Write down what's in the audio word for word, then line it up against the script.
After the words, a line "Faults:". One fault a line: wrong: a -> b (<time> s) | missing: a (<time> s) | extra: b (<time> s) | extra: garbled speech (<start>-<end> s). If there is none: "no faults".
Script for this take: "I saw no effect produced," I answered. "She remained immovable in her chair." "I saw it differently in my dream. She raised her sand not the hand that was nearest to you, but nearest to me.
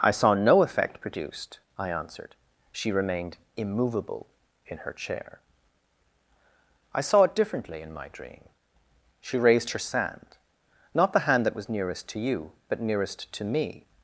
"I saw no effect produced," I answered. "She remained immovable in her chair." "I saw it differently in my dream. She raised her sand not the hand that was nearest to you, but nearest to me.
Faults:
no faults